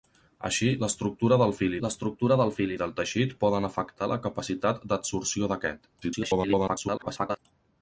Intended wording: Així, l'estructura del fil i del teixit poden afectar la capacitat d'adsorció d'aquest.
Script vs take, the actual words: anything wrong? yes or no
yes